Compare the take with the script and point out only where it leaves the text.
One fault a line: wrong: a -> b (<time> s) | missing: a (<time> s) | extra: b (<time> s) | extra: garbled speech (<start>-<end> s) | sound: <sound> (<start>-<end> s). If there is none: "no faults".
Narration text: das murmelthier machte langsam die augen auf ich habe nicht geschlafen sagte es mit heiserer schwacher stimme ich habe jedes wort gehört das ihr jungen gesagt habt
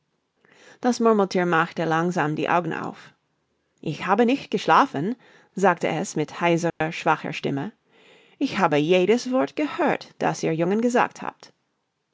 sound: dropout (6.7-6.8 s)